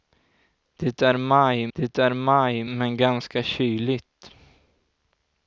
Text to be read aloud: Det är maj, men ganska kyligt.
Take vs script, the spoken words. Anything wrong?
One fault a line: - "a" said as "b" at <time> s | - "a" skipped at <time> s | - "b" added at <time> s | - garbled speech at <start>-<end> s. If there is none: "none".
- "det är maj" added at 1.7 s